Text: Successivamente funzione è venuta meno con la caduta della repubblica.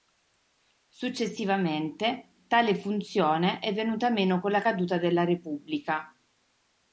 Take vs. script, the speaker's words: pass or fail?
fail